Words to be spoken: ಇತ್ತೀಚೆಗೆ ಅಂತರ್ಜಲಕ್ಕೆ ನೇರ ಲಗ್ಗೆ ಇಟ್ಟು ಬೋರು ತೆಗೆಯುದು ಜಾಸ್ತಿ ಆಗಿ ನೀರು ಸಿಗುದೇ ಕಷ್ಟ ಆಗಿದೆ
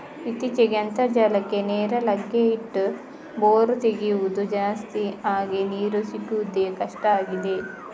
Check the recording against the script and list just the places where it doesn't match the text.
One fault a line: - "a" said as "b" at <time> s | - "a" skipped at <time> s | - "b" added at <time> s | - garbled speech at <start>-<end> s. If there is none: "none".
none